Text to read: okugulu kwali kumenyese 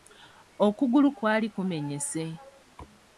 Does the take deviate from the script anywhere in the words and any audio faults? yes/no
no